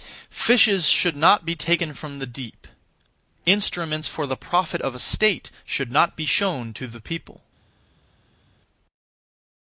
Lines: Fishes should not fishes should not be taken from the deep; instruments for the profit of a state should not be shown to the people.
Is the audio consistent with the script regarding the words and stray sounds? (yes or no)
no